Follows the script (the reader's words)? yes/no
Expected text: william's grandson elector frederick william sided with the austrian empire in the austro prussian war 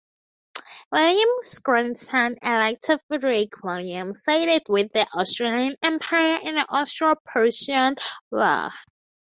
yes